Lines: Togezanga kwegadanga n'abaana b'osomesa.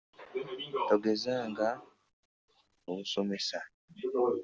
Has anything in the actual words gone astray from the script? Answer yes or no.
yes